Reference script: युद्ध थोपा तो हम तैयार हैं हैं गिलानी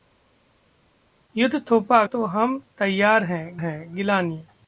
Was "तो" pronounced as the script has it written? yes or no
yes